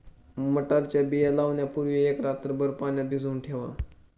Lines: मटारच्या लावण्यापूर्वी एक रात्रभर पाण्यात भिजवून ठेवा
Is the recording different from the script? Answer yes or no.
yes